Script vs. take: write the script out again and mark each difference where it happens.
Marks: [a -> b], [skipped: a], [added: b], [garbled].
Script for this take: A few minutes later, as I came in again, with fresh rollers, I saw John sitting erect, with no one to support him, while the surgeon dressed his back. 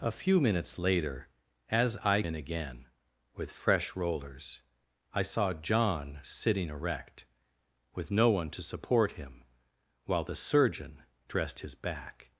A few minutes later, as I [skipped: came] in again, with fresh rollers, I saw John sitting erect, with no one to support him, while the surgeon dressed his back.